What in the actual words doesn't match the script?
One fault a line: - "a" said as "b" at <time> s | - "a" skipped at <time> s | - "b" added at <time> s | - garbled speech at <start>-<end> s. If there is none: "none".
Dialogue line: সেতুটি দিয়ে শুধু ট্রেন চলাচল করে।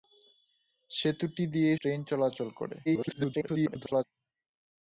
- "শুধু" skipped at 1.7 s
- garbled speech at 2.9-4.0 s